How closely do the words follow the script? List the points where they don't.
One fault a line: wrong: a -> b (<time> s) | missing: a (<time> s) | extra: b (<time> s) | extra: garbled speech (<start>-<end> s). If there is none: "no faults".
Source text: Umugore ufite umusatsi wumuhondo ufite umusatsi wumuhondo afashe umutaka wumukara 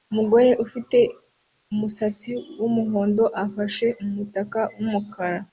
missing: ufite umusatsi wumuhondo (3.2 s)